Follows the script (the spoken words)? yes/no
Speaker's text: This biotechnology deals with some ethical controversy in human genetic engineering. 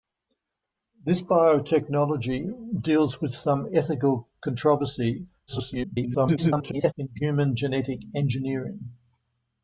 no